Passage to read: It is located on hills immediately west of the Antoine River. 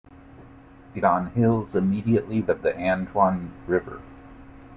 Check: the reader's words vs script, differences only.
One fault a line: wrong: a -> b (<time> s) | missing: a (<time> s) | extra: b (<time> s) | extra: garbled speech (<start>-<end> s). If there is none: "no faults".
missing: is located (1.1 s)
missing: west (2.4 s)